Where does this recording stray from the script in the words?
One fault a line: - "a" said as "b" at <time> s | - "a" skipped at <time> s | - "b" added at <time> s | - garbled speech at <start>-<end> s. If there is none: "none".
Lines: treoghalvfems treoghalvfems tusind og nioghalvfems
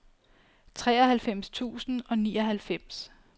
- "treoghalvfems" skipped at 1.5 s